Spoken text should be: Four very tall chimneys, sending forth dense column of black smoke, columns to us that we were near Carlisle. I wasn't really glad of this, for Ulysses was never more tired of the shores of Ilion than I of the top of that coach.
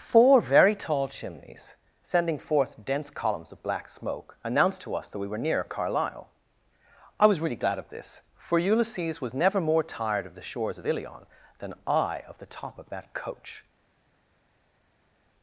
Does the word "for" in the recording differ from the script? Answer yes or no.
no